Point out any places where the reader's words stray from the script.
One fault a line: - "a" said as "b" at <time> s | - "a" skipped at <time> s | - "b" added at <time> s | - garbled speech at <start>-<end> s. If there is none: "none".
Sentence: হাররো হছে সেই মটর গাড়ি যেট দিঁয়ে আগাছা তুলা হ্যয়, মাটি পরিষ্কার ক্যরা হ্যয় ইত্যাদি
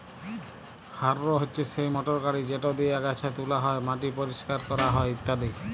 none